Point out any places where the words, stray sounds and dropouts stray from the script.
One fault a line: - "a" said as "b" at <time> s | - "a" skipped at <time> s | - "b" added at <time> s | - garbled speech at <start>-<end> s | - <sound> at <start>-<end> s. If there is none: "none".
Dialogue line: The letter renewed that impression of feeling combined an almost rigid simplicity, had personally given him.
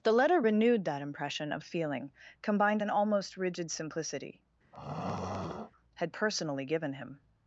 - throat clearing at 4.7-5.7 s